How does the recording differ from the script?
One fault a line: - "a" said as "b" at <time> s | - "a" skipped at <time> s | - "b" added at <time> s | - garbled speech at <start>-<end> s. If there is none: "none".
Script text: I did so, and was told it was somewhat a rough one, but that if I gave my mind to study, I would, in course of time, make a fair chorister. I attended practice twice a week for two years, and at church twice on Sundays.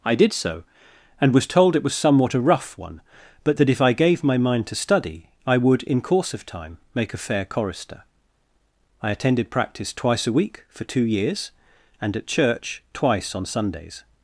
none